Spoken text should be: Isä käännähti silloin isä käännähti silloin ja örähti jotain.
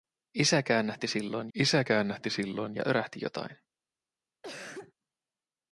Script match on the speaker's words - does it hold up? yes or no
yes